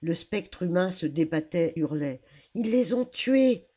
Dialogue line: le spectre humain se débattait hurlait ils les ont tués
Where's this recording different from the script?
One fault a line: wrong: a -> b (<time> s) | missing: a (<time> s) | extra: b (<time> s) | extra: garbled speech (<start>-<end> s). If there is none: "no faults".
no faults